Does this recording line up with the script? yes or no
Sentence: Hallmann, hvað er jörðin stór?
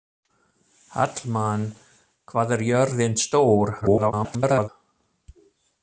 no